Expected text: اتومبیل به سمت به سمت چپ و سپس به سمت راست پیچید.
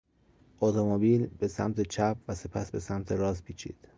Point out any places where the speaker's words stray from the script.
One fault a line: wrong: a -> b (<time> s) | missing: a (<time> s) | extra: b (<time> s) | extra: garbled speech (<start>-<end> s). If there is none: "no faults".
missing: به سمت (1.8 s)